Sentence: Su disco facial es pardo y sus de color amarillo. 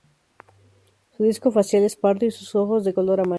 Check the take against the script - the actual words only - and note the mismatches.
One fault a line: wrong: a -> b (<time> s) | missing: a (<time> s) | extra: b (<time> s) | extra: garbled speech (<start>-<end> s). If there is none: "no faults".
extra: ojos (2.5 s)